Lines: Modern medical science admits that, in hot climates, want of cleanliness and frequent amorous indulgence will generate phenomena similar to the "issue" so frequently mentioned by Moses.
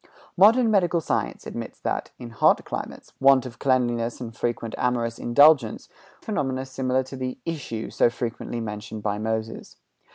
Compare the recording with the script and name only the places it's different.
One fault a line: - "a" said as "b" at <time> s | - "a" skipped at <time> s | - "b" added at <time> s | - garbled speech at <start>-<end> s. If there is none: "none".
- "will generate" skipped at 5.9 s